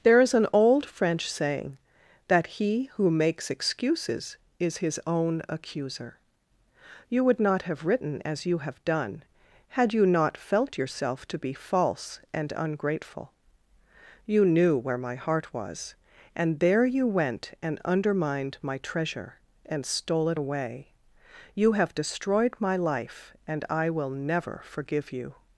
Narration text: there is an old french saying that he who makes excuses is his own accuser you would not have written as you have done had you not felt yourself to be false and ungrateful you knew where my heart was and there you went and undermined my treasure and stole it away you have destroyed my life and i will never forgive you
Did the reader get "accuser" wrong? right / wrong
right